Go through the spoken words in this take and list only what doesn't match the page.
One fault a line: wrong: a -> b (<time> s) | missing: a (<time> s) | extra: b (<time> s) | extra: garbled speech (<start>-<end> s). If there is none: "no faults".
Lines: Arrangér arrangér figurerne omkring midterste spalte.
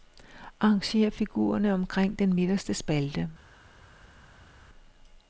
missing: arrangér (1.1 s)
extra: den (2.2 s)